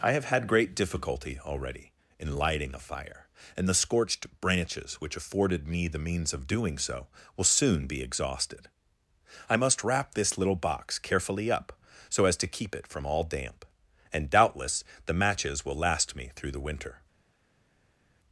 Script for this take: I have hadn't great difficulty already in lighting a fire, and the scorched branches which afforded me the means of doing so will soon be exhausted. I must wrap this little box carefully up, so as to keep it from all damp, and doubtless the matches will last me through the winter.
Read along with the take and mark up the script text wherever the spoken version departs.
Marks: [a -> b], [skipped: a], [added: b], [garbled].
I have [hadn't -> had] great difficulty already in lighting a fire, and the scorched branches which afforded me the means of doing so will soon be exhausted. I must wrap this little box carefully up, so as to keep it from all damp, and doubtless the matches will last me through the winter.